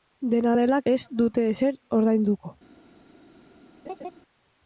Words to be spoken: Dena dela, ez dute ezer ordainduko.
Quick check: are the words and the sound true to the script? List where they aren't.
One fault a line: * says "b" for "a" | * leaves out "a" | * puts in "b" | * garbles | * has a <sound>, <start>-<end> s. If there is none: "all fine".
* has a laugh, 3.8-4.1 s